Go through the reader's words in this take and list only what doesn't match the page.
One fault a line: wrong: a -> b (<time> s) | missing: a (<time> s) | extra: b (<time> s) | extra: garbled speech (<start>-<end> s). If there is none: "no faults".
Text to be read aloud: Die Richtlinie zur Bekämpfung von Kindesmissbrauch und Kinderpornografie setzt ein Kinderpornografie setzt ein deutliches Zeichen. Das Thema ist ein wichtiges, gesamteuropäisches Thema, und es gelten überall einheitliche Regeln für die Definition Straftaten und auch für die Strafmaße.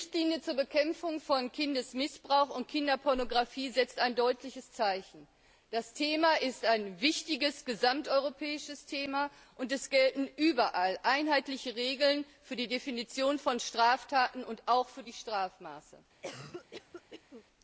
missing: Kinderpornografie setzt ein (4.2 s)
extra: von (13.4 s)